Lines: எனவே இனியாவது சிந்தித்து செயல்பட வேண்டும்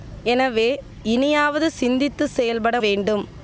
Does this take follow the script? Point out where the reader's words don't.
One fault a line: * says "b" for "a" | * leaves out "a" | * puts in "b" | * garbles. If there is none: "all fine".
all fine